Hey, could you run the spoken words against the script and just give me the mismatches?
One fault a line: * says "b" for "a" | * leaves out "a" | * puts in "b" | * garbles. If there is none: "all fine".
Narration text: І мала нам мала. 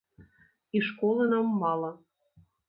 * says "школы" for "мала"